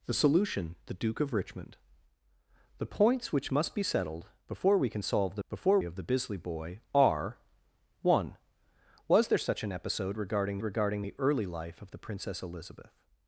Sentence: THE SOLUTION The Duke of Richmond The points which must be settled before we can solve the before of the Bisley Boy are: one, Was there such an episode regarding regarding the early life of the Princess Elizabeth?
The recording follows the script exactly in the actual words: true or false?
true